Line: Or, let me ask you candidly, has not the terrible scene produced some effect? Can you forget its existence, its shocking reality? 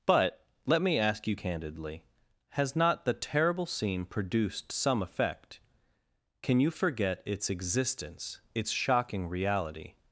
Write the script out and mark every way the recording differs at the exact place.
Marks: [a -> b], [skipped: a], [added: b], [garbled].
[Or, -> But] let me ask you candidly, has not the terrible scene produced some effect? Can you forget its existence, its shocking reality?